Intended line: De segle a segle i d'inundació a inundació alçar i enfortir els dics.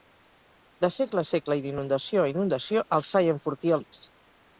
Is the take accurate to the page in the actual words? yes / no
no